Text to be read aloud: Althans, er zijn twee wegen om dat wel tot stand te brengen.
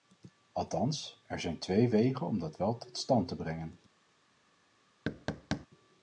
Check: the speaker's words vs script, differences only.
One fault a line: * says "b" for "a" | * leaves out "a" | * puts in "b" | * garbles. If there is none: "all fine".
all fine